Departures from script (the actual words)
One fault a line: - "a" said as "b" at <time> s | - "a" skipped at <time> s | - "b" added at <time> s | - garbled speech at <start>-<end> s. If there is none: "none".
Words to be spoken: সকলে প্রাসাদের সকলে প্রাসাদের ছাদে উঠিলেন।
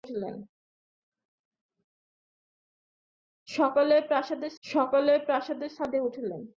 none